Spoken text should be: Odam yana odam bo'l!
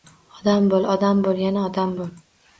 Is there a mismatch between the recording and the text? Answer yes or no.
yes